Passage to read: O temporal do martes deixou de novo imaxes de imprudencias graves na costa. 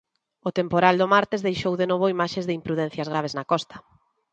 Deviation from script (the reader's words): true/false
false